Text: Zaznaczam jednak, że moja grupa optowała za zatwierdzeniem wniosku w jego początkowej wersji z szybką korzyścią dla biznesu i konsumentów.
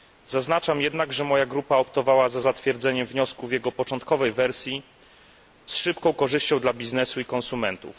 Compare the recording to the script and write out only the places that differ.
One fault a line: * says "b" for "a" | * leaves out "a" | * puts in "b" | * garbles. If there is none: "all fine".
all fine